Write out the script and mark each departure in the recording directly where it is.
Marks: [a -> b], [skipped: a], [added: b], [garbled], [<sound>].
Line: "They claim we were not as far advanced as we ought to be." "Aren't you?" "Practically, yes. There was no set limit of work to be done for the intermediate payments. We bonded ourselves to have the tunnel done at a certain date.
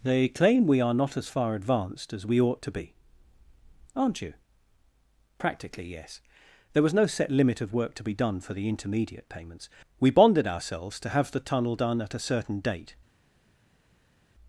"They claim we [were -> are] not as far advanced as we ought to be." "Aren't you?" "Practically, yes. There was no set limit of work to be done for the intermediate payments. We bonded ourselves to have the tunnel done at a certain date.